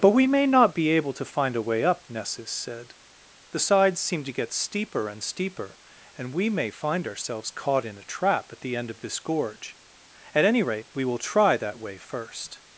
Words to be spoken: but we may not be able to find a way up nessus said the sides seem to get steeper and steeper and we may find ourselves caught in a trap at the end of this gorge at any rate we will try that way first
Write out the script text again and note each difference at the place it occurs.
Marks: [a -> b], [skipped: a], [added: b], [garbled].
but we may not be able to find a way up nessus said the sides seem to get steeper and steeper and we may find ourselves caught in a trap at the end of this gorge at any rate we will try that way first